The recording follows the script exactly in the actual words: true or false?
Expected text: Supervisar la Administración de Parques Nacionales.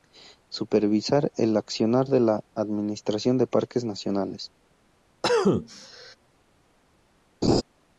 false